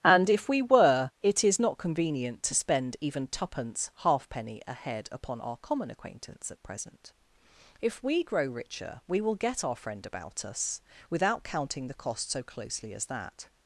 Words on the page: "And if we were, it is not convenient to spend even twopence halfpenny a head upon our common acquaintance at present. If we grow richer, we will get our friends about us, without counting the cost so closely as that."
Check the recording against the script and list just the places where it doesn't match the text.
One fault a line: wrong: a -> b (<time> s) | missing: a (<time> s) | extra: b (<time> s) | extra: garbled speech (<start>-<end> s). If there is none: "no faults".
wrong: friends -> friend (9.7 s)